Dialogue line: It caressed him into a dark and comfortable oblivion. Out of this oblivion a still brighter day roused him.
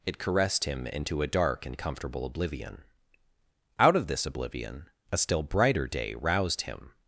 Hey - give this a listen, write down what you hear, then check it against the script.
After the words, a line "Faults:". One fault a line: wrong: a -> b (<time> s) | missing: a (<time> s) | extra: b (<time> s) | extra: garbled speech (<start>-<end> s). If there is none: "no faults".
It caressed him into a dark and comfortable oblivion. Out of this oblivion a still brighter day roused him.
Faults:
no faults